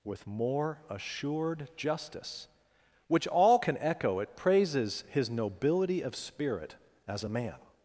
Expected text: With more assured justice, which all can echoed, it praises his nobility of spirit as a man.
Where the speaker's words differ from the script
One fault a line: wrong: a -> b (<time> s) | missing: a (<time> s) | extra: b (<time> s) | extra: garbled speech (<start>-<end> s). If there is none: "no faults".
wrong: echoed -> echo (3.8 s)